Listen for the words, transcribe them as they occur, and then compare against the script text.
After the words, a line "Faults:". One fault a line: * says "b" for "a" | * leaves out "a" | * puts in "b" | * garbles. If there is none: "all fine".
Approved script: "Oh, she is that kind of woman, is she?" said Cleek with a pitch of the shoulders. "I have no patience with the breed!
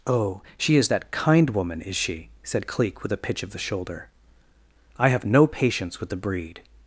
"Oh, she is that kind woman, is she?" said Cleek with a pitch of the shoulder. "I have no patience with the breed!
Faults:
* leaves out "of"
* says "shoulder" for "shoulders"